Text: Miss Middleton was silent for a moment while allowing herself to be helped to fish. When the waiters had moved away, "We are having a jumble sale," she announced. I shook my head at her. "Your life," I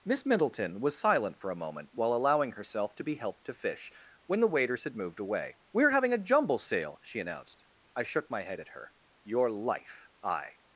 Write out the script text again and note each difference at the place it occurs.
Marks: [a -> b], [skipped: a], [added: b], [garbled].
Miss Middleton was silent for a moment while allowing herself to be helped to fish. When the waiters had moved away, "We are having a jumble sale," she announced. I shook my head at her. "Your life," I